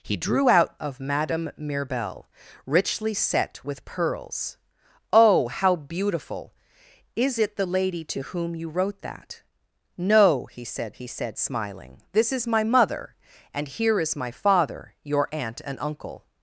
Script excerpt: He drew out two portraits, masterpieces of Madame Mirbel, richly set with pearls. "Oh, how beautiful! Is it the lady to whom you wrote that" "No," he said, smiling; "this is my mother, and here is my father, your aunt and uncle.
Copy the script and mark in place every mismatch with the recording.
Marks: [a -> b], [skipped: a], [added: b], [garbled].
He drew out [skipped: two portraits, masterpieces] of Madame Mirbel, richly set with pearls. "Oh, how beautiful! Is it the lady to whom you wrote that" "No," he said, [added: he said] smiling; "this is my mother, and here is my father, your aunt and uncle.